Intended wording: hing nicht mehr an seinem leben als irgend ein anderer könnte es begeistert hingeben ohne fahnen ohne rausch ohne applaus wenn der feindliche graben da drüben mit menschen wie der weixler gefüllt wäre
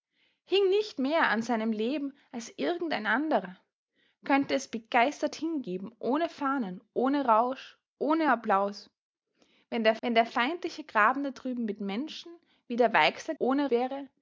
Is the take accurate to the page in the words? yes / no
no